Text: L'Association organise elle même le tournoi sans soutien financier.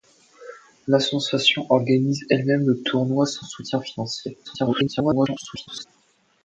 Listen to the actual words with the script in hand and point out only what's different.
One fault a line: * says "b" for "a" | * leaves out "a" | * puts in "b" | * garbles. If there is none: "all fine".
* garbles